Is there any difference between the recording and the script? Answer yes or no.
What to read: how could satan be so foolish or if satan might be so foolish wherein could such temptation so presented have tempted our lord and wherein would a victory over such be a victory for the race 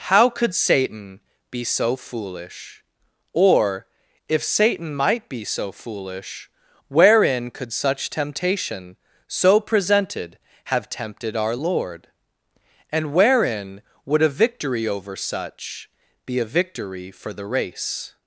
no